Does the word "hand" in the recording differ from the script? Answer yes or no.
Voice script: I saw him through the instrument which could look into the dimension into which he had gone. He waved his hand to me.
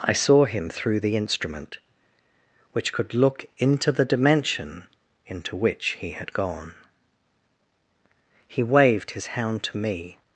yes